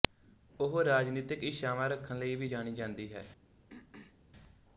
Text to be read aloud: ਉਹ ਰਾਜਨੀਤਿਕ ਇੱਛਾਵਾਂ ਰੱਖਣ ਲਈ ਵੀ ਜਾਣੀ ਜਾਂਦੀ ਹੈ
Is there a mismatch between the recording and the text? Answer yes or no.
no